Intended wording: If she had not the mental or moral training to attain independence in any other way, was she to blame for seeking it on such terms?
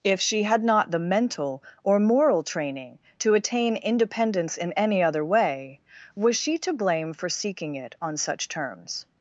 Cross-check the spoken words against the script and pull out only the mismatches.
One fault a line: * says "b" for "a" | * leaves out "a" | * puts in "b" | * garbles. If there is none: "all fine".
all fine